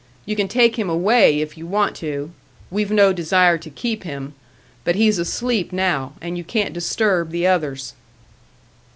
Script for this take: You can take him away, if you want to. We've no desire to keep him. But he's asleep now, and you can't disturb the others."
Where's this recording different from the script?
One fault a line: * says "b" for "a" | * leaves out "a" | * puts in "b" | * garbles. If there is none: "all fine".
all fine